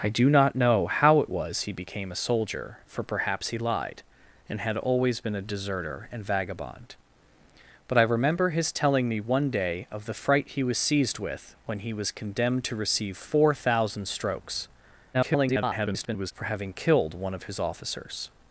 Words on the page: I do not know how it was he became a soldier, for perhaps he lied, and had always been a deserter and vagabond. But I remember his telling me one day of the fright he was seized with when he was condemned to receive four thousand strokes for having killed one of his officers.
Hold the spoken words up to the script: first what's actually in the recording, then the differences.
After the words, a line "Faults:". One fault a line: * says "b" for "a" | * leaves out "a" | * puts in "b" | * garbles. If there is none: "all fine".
I do not know how it was he became a soldier, for perhaps he lied, and had always been a deserter and vagabond. But I remember his telling me one day of the fright he was seized with when he was condemned to receive four thousand strokes [garbled] for having killed one of his officers.
Faults:
* garbles